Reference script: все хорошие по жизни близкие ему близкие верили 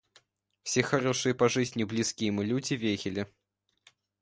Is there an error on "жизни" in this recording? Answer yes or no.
no